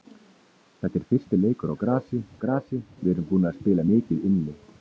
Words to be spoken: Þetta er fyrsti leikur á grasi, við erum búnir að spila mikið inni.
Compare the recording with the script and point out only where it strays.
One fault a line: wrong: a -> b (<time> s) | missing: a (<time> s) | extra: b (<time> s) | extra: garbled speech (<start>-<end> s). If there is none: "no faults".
extra: grasi (2.4 s)